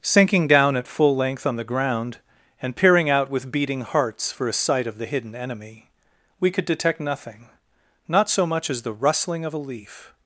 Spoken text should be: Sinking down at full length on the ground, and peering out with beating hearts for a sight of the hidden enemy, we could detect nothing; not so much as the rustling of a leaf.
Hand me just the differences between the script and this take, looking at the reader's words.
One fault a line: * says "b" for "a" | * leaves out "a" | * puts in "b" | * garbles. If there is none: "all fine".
all fine